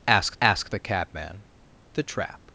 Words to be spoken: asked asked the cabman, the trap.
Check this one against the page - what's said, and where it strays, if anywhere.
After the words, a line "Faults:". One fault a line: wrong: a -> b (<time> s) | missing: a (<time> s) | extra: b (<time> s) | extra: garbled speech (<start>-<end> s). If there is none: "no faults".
asked asked the cabman, the trap.
Faults:
no faults